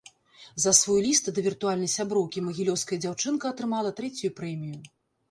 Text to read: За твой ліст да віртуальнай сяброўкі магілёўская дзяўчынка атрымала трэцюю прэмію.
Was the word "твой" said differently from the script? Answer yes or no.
yes